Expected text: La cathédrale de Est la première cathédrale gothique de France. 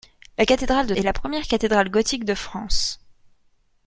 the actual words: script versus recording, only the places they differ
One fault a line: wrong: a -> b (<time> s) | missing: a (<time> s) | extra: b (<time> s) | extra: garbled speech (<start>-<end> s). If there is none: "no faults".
no faults